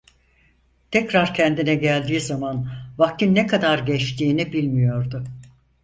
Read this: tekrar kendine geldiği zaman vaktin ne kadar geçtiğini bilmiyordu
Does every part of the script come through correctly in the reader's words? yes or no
yes